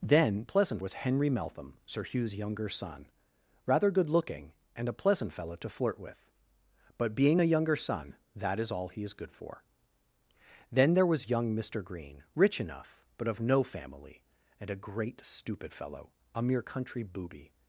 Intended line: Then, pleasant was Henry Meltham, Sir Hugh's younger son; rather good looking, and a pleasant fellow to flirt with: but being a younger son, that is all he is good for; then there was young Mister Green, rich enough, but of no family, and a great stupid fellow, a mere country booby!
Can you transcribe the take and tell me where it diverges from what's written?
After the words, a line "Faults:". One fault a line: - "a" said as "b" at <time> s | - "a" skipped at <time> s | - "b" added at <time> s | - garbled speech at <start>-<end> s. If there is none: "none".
Then, pleasant was Henry Meltham, Sir Hugh's younger son; rather good looking, and a pleasant fellow to flirt with: but being a younger son, that is all he is good for; then there was young Mister Green, rich enough, but of no family, and a great stupid fellow, a mere country booby!
Faults:
none